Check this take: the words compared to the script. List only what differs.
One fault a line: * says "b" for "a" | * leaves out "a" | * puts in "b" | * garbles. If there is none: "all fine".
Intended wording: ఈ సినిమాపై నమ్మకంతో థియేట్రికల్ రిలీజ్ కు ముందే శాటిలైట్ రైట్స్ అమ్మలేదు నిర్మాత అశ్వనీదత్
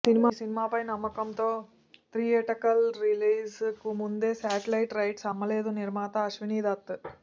all fine